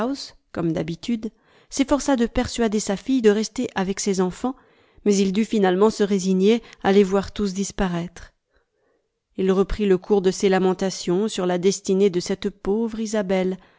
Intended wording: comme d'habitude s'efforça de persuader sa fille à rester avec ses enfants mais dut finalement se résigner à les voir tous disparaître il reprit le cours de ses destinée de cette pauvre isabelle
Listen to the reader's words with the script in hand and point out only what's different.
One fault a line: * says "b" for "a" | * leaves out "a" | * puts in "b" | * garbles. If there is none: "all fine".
* says "de" for "à"
* puts in "il"
* puts in "lamentations sur la"